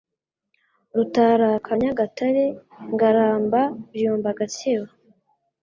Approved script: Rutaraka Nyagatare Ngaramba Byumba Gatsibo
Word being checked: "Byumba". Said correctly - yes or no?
yes